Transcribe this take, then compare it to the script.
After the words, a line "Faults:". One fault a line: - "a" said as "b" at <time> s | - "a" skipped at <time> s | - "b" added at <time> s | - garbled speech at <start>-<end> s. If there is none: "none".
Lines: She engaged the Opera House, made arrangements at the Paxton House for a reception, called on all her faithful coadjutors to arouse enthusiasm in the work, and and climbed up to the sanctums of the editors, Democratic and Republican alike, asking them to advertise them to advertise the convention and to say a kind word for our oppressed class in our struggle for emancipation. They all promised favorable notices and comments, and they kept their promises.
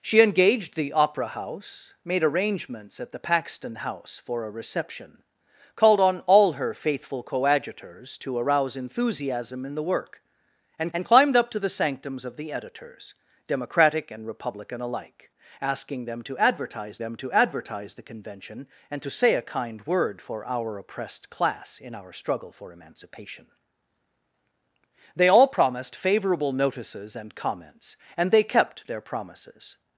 She engaged the Opera House, made arrangements at the Paxton House for a reception, called on all her faithful coadjutors to arouse enthusiasm in the work, and and climbed up to the sanctums of the editors, Democratic and Republican alike, asking them to advertise them to advertise the convention and to say a kind word for our oppressed class in our struggle for emancipation. They all promised favorable notices and comments, and they kept their promises.
Faults:
none